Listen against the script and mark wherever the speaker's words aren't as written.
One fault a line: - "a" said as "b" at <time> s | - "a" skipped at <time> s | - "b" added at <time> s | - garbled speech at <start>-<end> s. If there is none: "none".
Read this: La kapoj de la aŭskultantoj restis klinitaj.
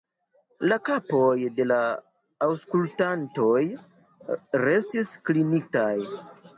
none